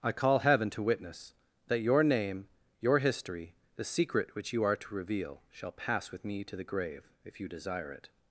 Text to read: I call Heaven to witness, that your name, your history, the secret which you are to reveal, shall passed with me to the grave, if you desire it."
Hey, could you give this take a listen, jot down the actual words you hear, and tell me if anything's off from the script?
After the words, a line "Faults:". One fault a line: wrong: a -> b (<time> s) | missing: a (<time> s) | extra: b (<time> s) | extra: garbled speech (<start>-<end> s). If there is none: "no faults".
I call Heaven to witness, that your name, your history, the secret which you are to reveal, shall pass with me to the grave, if you desire it."
Faults:
wrong: passed -> pass (5.7 s)